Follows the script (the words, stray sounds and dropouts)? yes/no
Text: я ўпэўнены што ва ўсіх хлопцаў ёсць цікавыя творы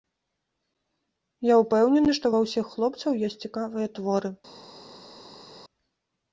yes